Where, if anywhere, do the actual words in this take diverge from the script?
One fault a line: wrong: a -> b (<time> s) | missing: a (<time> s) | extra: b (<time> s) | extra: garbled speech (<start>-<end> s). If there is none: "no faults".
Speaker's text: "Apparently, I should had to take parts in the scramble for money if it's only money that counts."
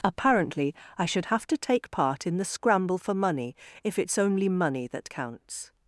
wrong: had -> have (1.2 s)
wrong: parts -> part (1.9 s)